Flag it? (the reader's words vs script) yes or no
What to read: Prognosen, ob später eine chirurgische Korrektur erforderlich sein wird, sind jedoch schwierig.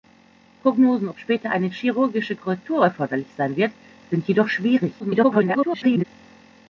yes